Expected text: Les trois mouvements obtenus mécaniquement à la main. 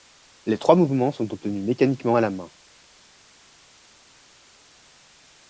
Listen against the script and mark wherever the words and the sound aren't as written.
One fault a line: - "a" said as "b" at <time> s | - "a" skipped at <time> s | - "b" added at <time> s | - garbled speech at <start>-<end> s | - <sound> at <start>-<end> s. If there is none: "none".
- "sont" added at 1.1 s